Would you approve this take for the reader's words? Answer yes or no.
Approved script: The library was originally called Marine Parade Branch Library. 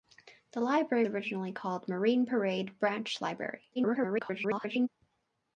no